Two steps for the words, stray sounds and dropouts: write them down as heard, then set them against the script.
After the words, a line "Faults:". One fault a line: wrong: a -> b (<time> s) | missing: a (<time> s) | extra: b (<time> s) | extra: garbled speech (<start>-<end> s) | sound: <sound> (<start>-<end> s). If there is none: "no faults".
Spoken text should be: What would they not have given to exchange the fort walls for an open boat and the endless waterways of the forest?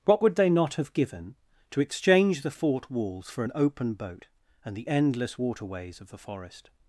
What would they not have given to exchange the fort walls for an open boat and the endless waterways of the forest?
Faults:
no faults